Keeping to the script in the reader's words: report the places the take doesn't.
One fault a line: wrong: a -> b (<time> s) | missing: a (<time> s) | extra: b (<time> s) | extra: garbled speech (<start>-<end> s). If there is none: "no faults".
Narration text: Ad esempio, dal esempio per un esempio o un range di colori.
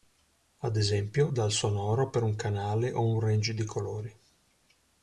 wrong: esempio -> sonoro (1.5 s)
wrong: esempio -> canale (2.4 s)